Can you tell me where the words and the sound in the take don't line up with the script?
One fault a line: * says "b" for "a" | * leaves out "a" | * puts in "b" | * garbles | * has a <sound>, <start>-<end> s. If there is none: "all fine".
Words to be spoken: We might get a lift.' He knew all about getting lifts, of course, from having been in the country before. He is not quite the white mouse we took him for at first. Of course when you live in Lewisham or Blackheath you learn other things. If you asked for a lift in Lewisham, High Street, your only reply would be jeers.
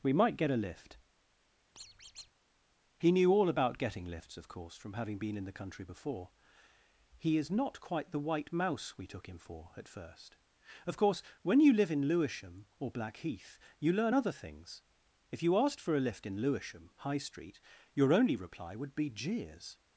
* has a squeak, 1.7-2.3 s